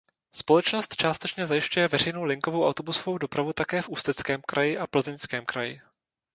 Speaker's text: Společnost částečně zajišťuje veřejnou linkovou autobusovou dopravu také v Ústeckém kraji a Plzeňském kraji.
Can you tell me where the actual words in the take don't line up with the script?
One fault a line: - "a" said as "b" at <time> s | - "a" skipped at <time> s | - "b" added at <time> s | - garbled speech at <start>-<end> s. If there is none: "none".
none